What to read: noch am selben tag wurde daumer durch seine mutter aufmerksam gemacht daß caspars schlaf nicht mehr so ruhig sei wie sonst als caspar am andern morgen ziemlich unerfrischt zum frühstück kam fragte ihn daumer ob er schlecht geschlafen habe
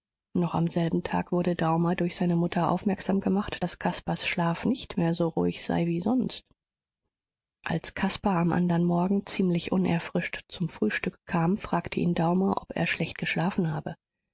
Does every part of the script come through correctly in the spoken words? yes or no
yes